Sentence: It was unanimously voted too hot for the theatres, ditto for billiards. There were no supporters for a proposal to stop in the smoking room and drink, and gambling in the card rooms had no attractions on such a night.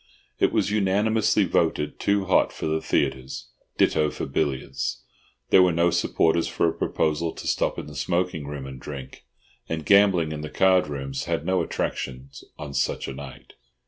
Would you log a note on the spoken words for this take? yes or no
no